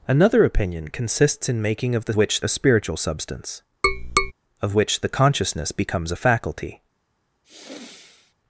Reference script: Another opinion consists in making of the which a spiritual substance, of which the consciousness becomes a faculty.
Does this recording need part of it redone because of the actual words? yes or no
no